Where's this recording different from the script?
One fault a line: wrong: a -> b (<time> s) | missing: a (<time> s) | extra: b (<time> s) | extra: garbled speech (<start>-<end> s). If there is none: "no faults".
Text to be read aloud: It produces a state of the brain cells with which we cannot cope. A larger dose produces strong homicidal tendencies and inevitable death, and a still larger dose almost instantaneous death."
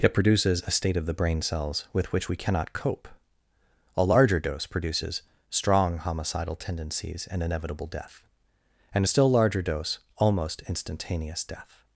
no faults